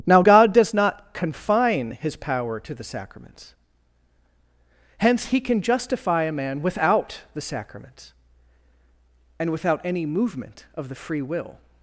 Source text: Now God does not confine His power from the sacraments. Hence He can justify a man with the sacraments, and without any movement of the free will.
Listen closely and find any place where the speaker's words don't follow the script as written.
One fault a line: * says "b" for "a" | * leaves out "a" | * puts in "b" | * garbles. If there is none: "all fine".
* says "to" for "from"
* says "without" for "with"